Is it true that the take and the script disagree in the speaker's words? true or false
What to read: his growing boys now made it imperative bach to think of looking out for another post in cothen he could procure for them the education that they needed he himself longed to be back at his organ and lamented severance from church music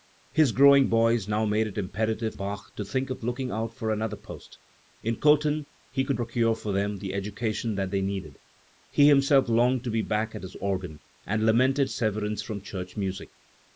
false